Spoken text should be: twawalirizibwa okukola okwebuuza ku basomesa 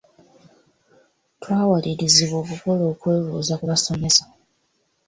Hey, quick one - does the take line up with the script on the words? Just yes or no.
yes